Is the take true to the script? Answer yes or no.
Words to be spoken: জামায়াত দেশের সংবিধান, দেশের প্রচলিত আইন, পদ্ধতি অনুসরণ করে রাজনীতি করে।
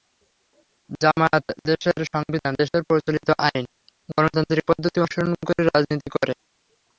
no